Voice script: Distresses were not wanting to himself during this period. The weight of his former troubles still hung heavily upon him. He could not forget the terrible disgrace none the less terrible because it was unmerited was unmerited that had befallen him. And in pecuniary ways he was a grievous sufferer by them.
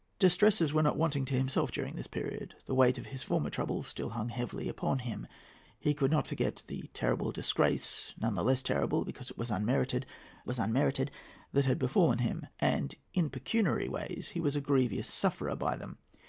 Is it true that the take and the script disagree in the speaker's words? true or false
false